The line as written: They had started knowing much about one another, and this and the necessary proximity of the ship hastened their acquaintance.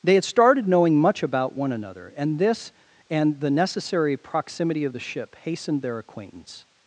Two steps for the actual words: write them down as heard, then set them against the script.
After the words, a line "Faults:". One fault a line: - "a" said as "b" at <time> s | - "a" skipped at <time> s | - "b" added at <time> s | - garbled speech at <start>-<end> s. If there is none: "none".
They had started knowing much about one another, and this and the necessary proximity of the ship hastened their acquaintance.
Faults:
none